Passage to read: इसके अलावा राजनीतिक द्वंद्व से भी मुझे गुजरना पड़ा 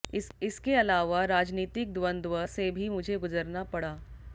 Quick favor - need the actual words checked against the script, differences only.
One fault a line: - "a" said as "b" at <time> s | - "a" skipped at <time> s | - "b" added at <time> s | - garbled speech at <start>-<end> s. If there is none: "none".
none